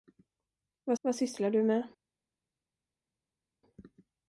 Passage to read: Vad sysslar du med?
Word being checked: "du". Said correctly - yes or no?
yes